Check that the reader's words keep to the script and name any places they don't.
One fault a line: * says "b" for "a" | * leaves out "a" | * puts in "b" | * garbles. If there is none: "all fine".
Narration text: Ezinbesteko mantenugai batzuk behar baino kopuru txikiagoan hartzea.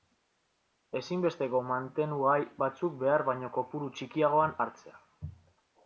all fine